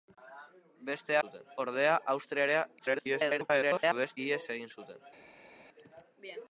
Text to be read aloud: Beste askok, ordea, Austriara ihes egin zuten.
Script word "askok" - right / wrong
wrong